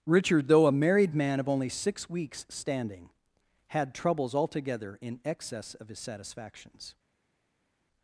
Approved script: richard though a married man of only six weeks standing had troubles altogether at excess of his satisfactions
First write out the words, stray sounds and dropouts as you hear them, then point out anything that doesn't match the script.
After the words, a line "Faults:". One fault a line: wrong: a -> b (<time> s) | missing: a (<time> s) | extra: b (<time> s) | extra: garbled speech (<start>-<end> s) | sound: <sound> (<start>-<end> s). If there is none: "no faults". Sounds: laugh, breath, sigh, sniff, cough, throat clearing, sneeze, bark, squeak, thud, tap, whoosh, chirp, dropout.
richard though a married man of only six weeks standing had troubles altogether in excess of his satisfactions
Faults:
wrong: at -> in (5.0 s)